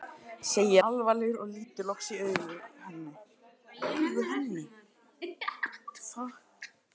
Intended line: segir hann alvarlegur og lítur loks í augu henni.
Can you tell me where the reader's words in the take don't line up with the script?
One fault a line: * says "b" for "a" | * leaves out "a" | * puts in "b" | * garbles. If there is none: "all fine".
* leaves out "hann"